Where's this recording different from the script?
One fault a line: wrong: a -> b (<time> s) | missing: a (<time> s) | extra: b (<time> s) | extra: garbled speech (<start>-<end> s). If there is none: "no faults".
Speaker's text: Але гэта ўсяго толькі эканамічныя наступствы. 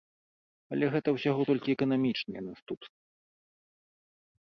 no faults